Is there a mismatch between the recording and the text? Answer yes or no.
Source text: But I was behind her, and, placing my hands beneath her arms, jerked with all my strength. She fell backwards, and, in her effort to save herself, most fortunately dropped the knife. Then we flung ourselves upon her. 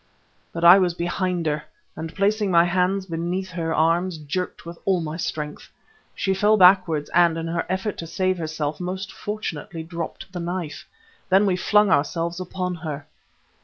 no